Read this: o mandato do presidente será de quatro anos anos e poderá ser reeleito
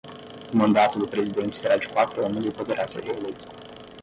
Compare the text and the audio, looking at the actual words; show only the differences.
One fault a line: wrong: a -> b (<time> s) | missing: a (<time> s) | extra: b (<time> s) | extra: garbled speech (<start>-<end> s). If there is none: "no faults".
no faults